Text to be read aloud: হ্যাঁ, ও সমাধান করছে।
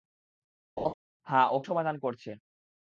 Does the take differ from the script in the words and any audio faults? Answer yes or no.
yes